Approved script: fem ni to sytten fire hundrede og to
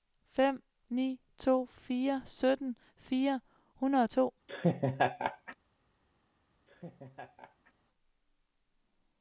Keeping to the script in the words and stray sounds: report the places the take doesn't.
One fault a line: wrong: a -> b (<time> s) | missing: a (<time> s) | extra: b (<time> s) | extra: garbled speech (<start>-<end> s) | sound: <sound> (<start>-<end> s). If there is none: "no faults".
extra: fire (1.6 s)
sound: laugh (4.5-5.6 s)
sound: laugh (6.7-7.7 s)